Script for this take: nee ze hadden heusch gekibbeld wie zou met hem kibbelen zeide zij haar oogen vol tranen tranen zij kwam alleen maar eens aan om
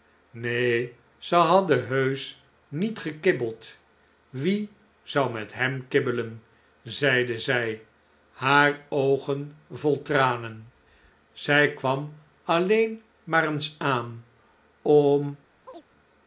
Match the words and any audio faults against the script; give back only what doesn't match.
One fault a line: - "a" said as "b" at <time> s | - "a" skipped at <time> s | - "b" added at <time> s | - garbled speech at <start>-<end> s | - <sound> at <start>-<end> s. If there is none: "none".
- "niet" added at 2.7 s
- "tranen" skipped at 10.7 s
- chirp at 15.7-15.8 s